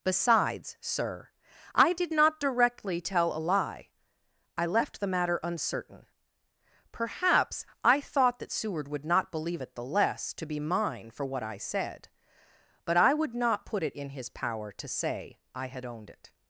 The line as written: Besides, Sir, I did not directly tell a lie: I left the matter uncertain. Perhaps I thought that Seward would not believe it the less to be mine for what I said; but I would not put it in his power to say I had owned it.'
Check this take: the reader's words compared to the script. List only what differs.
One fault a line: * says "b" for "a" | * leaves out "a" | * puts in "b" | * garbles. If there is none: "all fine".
all fine